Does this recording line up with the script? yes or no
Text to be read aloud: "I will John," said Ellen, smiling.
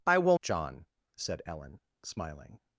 yes